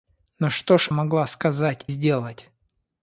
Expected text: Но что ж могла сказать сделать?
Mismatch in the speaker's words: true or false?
false